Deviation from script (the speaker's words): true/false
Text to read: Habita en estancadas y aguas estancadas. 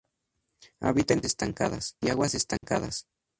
false